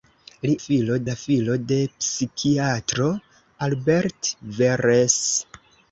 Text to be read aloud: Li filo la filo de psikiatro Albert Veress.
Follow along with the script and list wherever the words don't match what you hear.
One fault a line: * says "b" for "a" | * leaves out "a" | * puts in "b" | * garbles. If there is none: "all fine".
all fine